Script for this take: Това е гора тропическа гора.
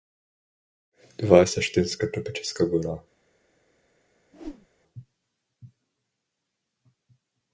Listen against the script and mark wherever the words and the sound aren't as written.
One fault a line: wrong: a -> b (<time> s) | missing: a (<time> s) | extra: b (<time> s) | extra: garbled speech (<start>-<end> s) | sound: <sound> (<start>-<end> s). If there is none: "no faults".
wrong: гора -> същинска (1.5 s)
sound: whoosh (4.3-4.7 s)